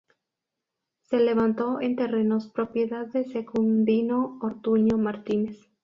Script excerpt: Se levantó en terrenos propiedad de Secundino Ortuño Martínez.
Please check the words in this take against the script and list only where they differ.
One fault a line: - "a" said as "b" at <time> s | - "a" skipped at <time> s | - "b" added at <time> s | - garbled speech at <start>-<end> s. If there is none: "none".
none